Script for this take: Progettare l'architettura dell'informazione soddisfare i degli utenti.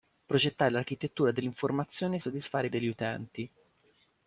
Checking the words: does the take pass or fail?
pass